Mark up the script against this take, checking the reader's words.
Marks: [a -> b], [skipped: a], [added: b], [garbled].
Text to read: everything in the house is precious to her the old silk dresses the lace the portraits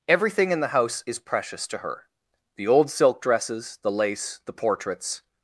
everything in the house is precious to her the old silk dresses the lace the portraits